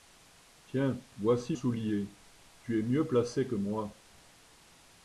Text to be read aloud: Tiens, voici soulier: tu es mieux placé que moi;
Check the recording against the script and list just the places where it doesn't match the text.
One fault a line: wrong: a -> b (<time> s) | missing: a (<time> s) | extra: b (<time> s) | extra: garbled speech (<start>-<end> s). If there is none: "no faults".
no faults